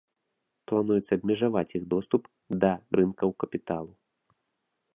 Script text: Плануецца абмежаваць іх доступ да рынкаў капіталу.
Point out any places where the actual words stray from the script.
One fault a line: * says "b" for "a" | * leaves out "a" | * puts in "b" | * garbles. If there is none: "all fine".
all fine